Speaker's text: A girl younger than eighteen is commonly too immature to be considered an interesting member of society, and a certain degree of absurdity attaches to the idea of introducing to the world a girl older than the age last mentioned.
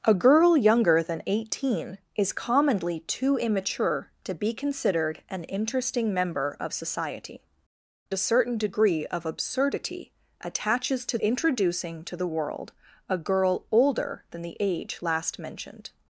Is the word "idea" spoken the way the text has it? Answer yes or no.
no